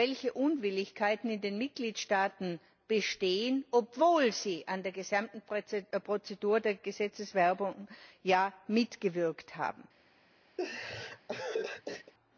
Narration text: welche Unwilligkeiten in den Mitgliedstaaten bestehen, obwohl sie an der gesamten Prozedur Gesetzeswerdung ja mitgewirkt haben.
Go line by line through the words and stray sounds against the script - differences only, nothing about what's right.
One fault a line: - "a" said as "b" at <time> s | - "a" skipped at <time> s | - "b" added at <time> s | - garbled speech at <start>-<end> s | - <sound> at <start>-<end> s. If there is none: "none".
- "der" added at 6.6 s
- laugh at 10.6-12.1 s